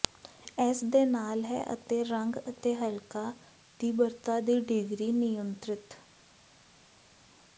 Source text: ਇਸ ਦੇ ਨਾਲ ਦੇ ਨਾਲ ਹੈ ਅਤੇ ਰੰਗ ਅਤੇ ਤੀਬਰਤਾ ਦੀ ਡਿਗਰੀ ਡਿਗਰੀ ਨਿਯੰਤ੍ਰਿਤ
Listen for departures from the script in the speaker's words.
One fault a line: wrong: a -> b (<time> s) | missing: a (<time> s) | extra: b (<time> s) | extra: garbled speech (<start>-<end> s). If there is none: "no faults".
missing: ਦੇ ਨਾਲ (1.4 s)
extra: ਹਲਕਾ (2.8 s)
missing: ਡਿਗਰੀ (5.1 s)